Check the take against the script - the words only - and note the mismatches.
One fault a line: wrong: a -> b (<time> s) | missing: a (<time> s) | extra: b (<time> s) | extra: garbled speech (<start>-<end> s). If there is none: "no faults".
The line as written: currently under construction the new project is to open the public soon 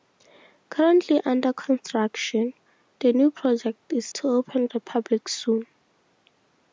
no faults